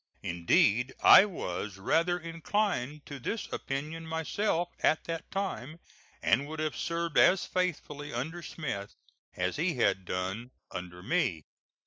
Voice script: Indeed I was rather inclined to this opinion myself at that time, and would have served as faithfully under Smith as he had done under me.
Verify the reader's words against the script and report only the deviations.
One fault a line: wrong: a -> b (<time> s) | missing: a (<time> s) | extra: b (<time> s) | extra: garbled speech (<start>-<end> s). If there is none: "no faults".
no faults